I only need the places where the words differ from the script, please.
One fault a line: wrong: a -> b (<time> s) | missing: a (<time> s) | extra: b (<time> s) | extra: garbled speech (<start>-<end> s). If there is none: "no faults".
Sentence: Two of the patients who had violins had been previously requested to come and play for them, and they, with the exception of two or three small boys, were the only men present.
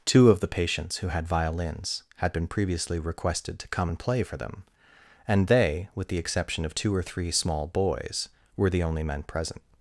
no faults